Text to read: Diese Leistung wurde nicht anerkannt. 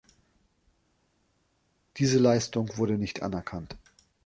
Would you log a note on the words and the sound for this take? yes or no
no